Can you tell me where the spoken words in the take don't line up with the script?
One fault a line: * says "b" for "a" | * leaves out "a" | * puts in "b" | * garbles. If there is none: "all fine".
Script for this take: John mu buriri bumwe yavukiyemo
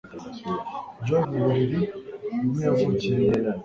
all fine